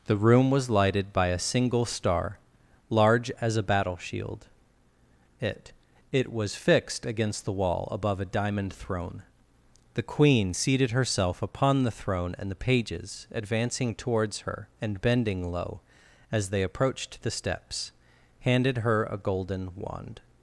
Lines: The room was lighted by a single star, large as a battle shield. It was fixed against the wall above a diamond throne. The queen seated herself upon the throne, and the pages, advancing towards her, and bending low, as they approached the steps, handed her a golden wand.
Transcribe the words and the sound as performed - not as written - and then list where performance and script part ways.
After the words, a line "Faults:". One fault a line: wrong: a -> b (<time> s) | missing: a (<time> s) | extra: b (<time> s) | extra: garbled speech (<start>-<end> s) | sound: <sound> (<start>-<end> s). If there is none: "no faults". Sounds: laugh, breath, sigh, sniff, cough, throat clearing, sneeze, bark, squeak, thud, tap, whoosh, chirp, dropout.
The room was lighted by a single star, large as a battle shield. It It was fixed against the wall above a diamond throne. The queen seated herself upon the throne, and the pages, advancing towards her, and bending low, as they approached the steps, handed her a golden wand.
Faults:
extra: It (6.1 s)